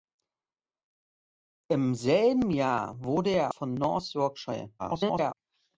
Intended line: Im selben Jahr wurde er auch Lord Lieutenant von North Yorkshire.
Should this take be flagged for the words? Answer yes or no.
yes